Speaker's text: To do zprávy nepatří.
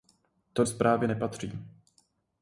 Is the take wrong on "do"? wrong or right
wrong